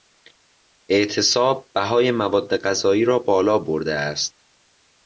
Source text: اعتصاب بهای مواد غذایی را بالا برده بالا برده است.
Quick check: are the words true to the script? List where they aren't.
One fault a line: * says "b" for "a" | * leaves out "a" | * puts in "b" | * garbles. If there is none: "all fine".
* leaves out "بالا برده"